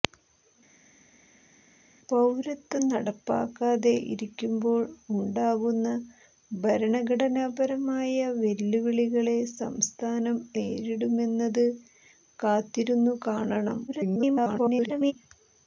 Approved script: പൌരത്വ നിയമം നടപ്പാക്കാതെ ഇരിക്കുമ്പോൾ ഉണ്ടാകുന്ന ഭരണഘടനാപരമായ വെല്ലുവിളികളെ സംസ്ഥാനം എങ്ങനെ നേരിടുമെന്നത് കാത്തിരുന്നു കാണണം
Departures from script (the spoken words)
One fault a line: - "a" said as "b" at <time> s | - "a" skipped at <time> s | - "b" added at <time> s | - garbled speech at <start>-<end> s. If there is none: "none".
- "നിയമം" skipped at 2.8 s
- "എങ്ങനെ" skipped at 10.4 s
- garbled speech at 13.9-15.1 s